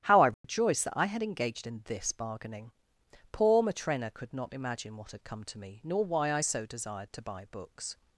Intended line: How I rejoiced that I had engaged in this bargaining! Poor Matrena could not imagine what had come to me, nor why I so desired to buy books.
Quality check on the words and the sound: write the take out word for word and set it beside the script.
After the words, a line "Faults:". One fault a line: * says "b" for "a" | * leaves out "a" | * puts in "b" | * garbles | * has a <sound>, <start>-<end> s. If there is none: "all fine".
How I rejoiced that I had engaged in this bargaining! Poor Matrena could not imagine what had come to me, nor why I so desired to buy books.
Faults:
* has a dropout, 0.3-0.4 s